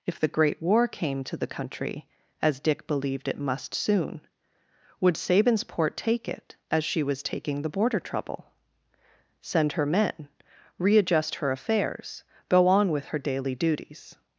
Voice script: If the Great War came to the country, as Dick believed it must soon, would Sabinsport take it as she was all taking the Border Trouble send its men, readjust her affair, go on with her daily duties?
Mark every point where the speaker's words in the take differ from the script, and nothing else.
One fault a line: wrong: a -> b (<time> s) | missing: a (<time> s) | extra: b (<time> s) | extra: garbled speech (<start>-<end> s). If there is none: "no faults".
missing: all (7.2 s)
wrong: its -> her (9.7 s)
wrong: affair -> affairs (11.5 s)